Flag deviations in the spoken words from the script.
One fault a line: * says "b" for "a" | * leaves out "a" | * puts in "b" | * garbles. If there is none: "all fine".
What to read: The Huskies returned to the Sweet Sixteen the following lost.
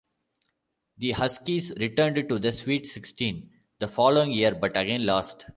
* puts in "year but again"